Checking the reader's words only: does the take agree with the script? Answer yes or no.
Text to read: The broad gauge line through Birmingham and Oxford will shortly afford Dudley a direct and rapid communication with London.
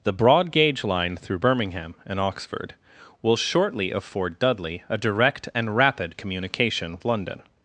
no